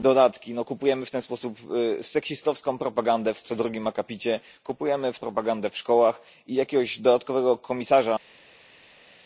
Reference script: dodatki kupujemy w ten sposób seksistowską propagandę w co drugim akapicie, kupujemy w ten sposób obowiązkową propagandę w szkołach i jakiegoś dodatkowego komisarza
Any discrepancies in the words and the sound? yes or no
yes